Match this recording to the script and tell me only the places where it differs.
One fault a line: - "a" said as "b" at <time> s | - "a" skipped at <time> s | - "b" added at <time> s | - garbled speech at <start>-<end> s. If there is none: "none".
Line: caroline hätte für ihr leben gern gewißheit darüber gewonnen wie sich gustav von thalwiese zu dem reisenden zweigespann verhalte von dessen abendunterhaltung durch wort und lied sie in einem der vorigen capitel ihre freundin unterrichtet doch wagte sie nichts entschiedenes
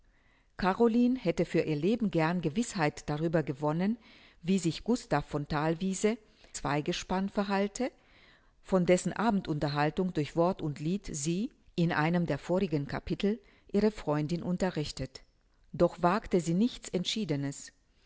- "zu dem reisenden" skipped at 6.2 s